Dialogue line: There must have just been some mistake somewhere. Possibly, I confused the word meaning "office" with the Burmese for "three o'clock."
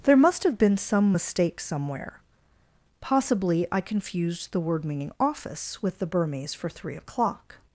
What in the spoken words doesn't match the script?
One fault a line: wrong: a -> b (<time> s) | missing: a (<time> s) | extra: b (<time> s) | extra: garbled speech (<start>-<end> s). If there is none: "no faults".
missing: just (0.6 s)